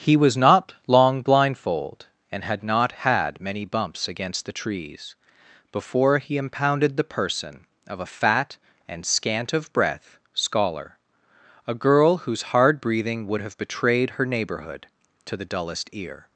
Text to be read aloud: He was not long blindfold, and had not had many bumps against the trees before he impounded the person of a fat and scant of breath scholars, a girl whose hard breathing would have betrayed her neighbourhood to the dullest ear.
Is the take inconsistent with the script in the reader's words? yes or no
yes